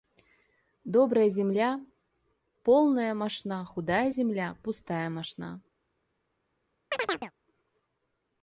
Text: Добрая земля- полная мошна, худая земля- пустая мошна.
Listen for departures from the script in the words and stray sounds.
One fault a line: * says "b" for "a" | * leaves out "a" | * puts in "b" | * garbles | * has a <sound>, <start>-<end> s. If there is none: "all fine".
* has a chirp, 6.9-7.3 s